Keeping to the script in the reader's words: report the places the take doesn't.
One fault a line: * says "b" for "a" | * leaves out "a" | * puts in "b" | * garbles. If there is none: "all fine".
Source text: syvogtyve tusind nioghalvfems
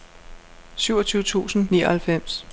all fine